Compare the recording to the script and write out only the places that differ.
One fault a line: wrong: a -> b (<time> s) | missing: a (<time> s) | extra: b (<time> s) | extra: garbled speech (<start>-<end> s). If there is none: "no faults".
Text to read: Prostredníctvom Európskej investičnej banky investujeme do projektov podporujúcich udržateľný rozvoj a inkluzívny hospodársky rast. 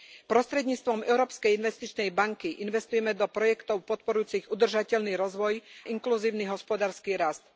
missing: a (5.6 s)